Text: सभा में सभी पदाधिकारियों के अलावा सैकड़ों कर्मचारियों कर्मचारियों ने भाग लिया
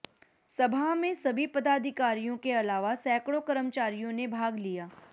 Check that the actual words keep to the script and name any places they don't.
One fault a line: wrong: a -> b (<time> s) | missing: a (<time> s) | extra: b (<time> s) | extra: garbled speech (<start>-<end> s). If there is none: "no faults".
missing: कर्मचारियों (4.1 s)